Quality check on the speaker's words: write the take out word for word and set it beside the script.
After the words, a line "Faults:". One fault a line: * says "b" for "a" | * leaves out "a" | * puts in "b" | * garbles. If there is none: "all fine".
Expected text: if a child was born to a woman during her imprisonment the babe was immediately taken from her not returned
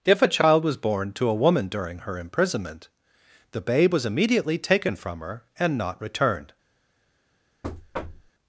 if a child was born to a woman during her imprisonment the babe was immediately taken from her and not returned
Faults:
* puts in "and"